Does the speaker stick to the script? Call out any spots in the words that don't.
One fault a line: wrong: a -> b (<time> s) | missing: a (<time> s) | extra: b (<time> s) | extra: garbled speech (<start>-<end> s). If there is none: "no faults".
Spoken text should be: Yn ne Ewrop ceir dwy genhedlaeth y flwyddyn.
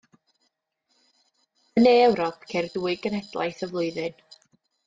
no faults